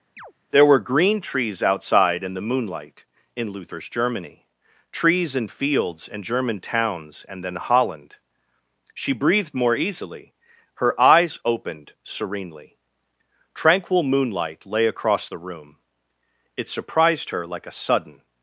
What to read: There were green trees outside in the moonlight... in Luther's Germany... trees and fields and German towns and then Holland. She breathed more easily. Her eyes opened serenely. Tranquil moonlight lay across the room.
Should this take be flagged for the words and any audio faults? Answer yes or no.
yes